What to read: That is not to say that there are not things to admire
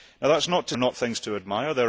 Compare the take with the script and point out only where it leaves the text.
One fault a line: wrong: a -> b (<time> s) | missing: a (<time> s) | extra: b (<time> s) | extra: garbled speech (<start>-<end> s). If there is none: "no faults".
missing: say that there (0.8 s)